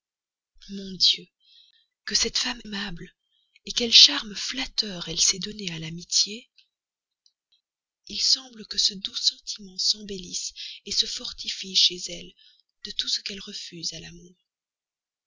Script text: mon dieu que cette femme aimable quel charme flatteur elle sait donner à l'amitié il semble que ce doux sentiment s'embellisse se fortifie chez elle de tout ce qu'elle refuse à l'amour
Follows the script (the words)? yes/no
yes